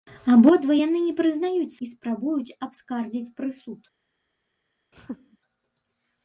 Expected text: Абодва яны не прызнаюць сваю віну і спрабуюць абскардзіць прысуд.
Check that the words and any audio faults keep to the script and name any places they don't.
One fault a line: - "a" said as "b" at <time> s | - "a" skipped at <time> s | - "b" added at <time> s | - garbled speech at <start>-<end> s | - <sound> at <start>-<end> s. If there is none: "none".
- "сваю віну" skipped at 1.8 s
- laugh at 4.9-5.4 s